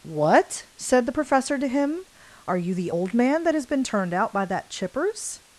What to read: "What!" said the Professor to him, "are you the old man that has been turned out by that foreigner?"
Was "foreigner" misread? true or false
true